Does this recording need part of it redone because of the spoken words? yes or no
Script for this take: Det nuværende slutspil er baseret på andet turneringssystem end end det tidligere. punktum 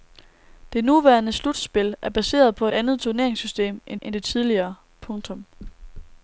no